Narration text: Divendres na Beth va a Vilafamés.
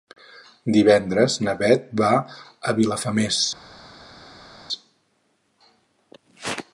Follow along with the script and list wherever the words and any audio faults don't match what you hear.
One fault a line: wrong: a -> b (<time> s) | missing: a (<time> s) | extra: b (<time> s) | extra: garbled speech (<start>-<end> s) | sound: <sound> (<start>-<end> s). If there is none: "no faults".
no faults